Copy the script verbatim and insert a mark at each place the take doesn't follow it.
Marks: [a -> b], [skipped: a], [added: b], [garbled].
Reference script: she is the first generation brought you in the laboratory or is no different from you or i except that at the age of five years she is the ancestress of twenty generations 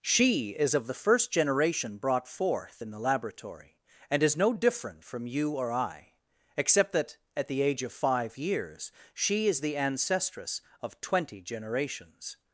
she is [added: of] the first generation brought [you -> forth] in the laboratory [or -> and] is no different from you or i except that at the age of five years she is the ancestress of twenty generations